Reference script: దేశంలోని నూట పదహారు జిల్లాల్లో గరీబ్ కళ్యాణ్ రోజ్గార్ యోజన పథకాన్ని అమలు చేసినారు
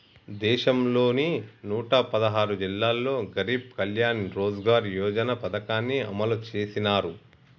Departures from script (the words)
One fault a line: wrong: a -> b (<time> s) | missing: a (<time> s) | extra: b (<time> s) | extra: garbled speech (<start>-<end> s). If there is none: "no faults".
no faults